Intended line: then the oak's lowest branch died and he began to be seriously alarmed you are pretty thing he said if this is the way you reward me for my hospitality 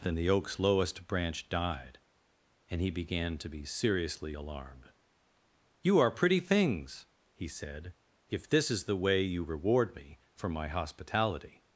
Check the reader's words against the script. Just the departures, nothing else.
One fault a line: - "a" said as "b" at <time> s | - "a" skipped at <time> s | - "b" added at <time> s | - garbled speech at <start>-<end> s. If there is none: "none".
- "thing" said as "things" at 6.4 s